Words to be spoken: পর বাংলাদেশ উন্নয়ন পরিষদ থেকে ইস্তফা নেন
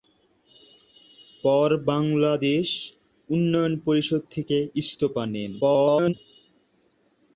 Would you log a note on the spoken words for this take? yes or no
yes